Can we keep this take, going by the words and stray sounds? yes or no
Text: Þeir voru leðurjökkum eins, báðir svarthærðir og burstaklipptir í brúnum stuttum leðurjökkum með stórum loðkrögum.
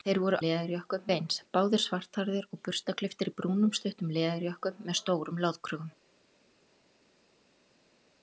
yes